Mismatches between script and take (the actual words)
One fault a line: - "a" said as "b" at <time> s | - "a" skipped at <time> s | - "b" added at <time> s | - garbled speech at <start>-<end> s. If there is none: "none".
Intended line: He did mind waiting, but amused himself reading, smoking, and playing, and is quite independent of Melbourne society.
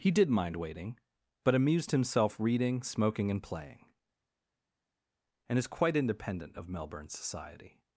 none